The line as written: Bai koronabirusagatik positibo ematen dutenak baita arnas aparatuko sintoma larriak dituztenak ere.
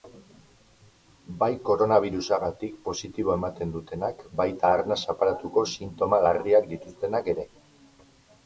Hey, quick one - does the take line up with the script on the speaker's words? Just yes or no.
yes